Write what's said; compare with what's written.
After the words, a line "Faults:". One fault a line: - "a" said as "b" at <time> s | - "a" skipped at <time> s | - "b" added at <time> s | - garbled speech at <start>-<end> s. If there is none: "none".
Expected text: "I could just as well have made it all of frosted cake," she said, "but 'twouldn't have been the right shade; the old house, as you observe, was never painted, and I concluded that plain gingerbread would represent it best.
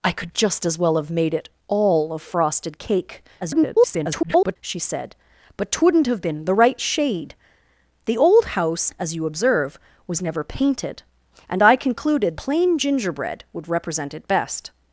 "I could just as well have made it all of frosted cake," [garbled] she said, "but 'twouldn't have been the right shade; the old house, as you observe, was never painted, and I concluded plain gingerbread would represent it best.
Faults:
- garbled speech at 3.4-4.6 s
- "that" skipped at 12.4 s